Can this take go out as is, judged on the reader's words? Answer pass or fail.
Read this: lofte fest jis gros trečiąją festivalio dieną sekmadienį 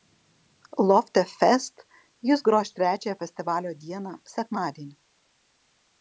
pass